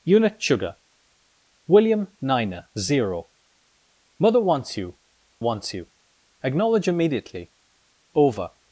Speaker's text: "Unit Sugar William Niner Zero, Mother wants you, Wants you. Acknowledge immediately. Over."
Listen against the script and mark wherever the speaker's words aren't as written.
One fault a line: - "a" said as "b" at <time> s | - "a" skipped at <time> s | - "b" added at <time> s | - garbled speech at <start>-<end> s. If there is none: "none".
none